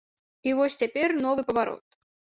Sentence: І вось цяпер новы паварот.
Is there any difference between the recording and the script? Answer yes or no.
no